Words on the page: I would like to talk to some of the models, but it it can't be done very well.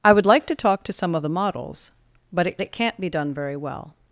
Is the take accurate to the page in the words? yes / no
yes